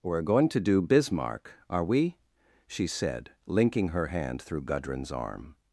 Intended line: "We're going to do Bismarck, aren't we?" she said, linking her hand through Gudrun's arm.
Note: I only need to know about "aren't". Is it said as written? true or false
false